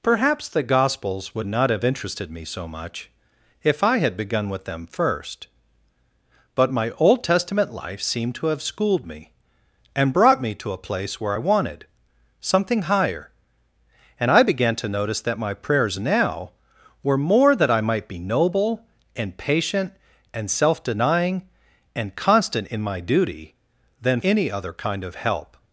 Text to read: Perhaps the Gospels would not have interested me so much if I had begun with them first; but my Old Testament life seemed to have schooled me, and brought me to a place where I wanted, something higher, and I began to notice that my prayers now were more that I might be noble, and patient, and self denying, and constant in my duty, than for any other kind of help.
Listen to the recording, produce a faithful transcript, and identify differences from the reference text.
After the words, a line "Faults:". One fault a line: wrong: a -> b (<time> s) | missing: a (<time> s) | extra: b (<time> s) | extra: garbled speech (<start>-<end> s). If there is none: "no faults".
Perhaps the Gospels would not have interested me so much if I had begun with them first; but my Old Testament life seemed to have schooled me, and brought me to a place where I wanted, something higher, and I began to notice that my prayers now were more that I might be noble, and patient, and self denying, and constant in my duty, than any other kind of help.
Faults:
missing: for (24.2 s)